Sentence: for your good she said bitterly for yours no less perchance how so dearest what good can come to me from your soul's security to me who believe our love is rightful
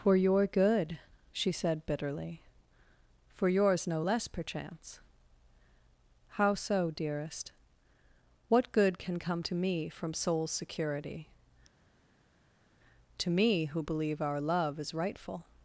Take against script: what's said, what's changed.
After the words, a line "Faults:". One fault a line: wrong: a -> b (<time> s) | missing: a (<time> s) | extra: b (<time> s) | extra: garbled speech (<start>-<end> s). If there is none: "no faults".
for your good she said bitterly for yours no less perchance how so dearest what good can come to me from soul's security to me who believe our love is rightful
Faults:
missing: your (10.1 s)